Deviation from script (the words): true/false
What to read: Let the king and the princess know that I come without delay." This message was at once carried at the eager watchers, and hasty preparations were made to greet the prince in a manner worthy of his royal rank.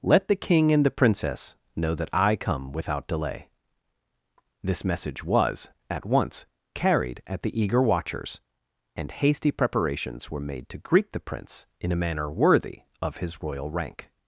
false